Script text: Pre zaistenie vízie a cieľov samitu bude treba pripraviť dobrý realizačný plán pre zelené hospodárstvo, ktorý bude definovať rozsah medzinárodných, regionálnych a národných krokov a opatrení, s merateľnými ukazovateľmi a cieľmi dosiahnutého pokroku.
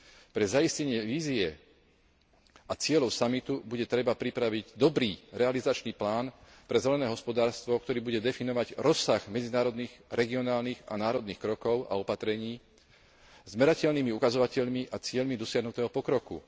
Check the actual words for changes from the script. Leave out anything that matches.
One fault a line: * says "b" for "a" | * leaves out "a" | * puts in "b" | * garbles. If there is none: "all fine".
all fine